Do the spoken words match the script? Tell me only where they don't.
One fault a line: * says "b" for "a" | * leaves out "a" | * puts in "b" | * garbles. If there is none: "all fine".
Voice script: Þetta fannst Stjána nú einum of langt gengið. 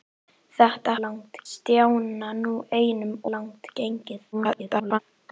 * says "langt" for "fannst"
* leaves out "of"
* garbles